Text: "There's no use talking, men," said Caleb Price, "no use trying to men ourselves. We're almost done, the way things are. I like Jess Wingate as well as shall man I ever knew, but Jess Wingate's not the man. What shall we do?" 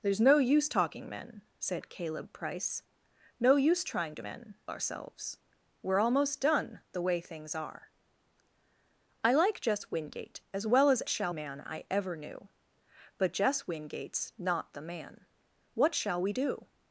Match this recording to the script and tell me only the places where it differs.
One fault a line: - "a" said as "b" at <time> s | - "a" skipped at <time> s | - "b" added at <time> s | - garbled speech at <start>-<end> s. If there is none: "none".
none